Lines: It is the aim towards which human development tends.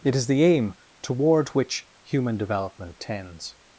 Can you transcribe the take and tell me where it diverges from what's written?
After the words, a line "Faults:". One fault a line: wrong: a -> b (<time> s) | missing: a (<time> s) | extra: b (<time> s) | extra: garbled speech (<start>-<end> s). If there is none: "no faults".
It is the aim toward which human development tends.
Faults:
wrong: towards -> toward (1.0 s)